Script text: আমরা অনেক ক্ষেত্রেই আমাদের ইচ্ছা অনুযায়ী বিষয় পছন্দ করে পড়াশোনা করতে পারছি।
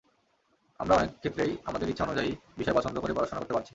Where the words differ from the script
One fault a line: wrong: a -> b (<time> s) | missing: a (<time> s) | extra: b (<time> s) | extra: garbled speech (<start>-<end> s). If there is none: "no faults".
no faults